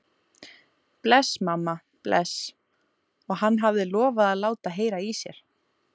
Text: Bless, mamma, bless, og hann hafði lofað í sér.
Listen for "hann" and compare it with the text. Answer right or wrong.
right